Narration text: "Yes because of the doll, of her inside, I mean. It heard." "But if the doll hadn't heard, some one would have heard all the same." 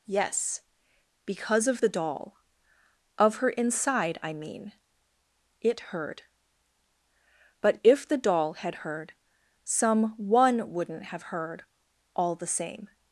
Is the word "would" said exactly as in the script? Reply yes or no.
no